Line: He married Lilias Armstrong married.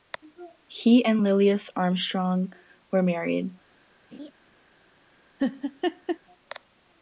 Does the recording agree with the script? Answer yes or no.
no